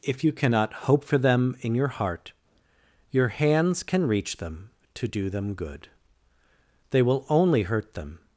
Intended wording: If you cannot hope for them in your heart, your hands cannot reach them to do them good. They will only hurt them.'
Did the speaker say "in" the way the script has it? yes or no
yes